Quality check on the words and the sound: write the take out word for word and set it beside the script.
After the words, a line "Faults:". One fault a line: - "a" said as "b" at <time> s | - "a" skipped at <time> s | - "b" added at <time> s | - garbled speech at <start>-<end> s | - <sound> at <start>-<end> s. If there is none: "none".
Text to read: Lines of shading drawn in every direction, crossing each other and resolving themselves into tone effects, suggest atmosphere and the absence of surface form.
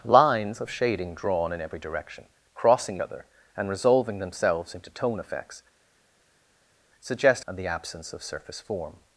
Lines of shading drawn in every direction, crossing other and resolving themselves into tone effects, suggest and the absence of surface form.
Faults:
- "each" skipped at 3.0 s
- "atmosphere" skipped at 7.4 s